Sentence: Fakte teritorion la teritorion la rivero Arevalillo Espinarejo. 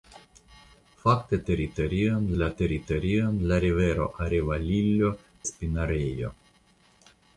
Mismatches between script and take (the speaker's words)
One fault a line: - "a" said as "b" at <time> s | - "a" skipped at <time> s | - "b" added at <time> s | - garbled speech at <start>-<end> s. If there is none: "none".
none